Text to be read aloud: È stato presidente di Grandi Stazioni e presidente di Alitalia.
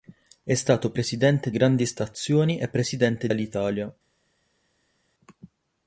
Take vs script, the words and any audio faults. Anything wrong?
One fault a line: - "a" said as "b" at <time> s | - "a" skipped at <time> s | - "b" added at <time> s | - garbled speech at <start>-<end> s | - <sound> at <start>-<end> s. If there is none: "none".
- "di" skipped at 1.5 s
- "di" skipped at 3.3 s